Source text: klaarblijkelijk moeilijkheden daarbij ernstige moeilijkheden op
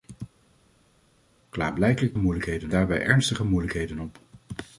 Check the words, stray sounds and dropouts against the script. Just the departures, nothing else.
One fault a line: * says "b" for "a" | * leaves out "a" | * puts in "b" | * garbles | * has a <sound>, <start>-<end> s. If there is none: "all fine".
all fine